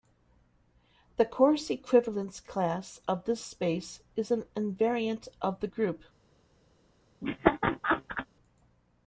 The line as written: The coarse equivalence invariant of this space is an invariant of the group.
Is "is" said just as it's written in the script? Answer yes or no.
yes